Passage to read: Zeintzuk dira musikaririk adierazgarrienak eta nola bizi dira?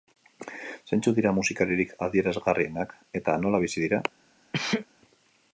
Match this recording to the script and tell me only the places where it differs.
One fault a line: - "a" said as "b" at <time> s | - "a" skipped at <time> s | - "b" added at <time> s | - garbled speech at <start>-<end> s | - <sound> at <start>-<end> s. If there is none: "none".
- sneeze at 4.5-4.9 s